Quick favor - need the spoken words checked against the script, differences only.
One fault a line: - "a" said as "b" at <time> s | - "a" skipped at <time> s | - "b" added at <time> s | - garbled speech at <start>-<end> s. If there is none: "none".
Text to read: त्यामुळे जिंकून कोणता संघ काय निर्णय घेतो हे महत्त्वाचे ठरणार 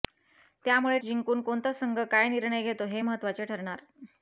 none